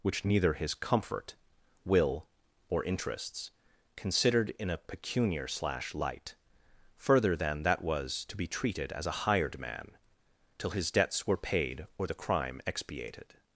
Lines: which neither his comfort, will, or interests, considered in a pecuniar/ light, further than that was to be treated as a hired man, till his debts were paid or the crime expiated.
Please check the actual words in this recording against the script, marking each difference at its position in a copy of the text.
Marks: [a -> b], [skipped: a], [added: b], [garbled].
which neither his comfort, will, or interests, considered in a pecuniar/ [added: slash] light, further than that was to be treated as a hired man, till his debts were paid or the crime expiated.